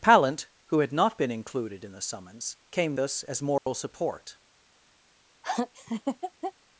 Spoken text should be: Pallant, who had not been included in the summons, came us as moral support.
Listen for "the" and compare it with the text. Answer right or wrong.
right